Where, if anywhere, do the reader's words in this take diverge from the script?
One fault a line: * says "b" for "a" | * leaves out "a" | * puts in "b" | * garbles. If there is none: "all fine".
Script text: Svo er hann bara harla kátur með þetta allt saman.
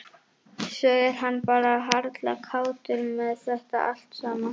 all fine